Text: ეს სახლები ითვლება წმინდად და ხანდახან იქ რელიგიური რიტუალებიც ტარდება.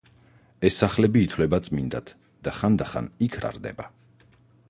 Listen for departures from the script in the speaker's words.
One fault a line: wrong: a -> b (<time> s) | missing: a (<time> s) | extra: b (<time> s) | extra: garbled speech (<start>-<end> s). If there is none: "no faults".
missing: რელიგიური რიტუალებიც (3.4 s)